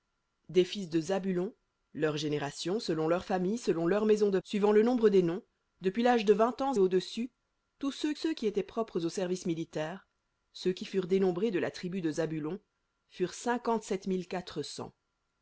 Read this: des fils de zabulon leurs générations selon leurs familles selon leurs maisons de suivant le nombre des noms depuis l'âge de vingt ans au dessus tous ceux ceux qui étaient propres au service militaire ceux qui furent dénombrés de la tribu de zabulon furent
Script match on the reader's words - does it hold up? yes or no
yes